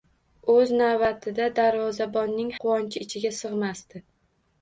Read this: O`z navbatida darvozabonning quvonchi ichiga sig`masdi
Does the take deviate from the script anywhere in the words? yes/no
no